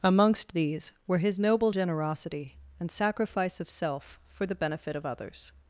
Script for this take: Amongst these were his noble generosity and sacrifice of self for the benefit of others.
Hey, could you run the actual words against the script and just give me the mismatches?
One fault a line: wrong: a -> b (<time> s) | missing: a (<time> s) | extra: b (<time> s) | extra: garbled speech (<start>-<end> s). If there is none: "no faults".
no faults